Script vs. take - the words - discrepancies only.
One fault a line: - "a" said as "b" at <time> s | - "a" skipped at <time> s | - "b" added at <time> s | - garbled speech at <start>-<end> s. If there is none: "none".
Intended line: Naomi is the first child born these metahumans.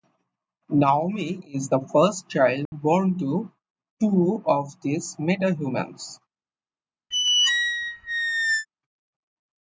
- "to two of" added at 3.2 s